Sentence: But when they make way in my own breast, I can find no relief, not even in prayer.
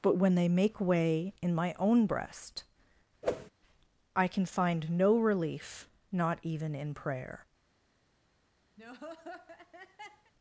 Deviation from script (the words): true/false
false